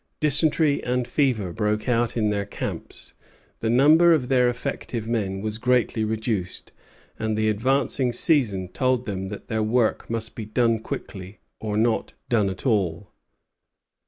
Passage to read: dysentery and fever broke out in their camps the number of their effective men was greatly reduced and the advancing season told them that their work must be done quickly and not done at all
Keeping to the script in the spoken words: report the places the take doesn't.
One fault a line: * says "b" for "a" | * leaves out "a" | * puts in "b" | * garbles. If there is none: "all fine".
* says "or" for "and"